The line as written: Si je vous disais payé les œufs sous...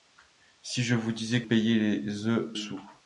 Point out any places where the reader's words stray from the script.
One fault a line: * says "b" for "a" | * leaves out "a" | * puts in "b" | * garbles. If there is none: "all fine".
all fine